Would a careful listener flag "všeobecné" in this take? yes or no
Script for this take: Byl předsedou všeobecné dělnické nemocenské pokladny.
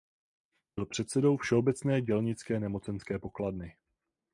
no